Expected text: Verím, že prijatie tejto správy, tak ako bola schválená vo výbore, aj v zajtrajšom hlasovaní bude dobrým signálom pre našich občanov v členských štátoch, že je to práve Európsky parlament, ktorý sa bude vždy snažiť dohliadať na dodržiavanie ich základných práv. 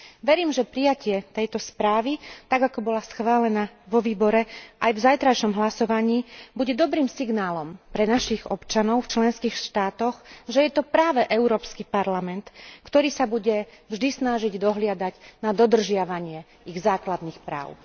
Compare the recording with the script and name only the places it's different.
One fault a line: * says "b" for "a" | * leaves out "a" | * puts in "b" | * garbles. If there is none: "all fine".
all fine